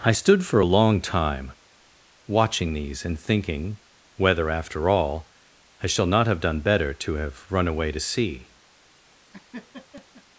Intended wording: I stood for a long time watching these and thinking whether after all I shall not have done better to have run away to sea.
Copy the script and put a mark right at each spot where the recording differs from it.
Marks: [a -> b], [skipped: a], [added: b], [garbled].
I stood for a long time watching these and thinking whether after all I shall not have done better to have run away to sea.